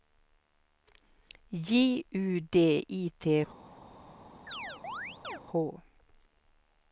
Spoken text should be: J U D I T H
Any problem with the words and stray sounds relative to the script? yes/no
yes